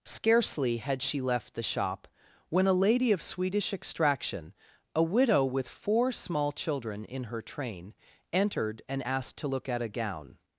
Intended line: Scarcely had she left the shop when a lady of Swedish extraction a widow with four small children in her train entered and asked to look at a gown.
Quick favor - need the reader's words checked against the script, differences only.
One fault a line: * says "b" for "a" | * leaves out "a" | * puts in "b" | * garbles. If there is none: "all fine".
all fine